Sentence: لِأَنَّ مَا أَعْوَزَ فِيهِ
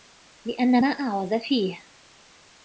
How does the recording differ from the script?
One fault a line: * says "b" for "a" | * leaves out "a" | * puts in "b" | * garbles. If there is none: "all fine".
all fine